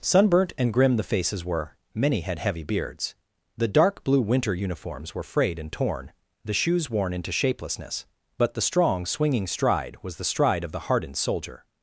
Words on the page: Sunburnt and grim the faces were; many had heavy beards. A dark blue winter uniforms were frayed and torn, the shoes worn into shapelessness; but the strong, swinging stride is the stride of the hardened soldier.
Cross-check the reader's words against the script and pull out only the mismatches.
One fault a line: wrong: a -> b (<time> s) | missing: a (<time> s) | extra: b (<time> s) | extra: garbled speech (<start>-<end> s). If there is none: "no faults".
wrong: A -> The (3.5 s)
wrong: is -> was (10.0 s)